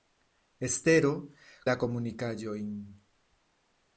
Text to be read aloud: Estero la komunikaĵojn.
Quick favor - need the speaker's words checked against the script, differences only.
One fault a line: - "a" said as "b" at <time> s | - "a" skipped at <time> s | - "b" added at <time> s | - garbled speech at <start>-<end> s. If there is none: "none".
none